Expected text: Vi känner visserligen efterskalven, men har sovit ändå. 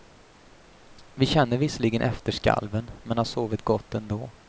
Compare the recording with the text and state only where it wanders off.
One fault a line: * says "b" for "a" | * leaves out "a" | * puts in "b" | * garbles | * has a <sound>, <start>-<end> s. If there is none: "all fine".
* puts in "gott"